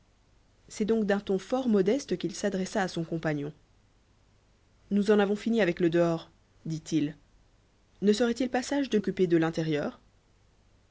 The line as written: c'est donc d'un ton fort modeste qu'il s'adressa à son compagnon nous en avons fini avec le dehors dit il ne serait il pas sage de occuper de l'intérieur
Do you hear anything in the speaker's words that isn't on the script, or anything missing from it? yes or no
no